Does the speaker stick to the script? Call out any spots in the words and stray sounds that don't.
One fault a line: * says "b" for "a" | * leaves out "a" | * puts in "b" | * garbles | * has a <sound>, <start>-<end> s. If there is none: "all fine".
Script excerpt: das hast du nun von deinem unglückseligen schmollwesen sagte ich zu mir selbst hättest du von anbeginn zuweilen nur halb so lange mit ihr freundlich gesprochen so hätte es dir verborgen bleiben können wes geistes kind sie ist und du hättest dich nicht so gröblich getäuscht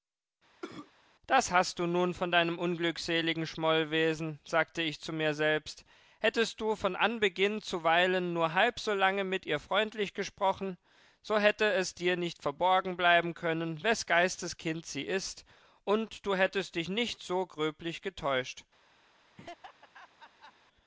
* has a cough, 0.6-0.9 s
* puts in "nicht"
* has a laugh, 19.3-20.5 s